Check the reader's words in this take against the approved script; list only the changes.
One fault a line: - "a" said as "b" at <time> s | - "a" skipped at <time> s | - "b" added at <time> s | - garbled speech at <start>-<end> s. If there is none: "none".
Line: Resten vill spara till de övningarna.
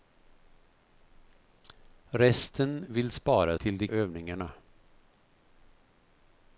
none